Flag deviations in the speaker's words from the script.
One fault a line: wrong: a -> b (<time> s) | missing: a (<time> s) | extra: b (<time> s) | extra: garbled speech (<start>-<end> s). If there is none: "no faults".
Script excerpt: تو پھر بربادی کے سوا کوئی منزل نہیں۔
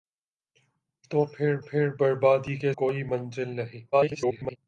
extra: پھر (1.6 s)
missing: سوا (2.7 s)
extra: garbled speech (3.9-4.6 s)